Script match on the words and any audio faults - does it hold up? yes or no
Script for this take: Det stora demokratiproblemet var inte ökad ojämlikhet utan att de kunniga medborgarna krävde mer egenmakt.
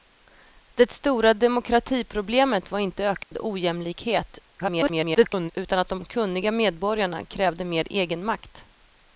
no